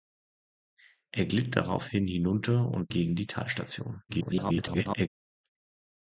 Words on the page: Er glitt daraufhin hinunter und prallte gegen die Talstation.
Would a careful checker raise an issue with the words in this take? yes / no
yes